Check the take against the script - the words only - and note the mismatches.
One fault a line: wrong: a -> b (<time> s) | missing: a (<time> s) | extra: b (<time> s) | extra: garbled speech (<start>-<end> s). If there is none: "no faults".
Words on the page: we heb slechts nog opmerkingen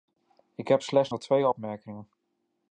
wrong: we -> ik (0.6 s)
extra: twee (1.2 s)